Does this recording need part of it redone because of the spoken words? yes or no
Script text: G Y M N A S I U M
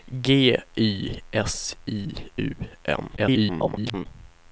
yes